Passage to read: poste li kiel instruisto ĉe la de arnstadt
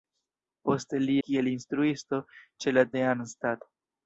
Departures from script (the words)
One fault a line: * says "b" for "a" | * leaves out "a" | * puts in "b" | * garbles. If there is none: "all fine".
all fine